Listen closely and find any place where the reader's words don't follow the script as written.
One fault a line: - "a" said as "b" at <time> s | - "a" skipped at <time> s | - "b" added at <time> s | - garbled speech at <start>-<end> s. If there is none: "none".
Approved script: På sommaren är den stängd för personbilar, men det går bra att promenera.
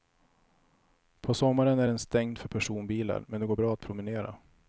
none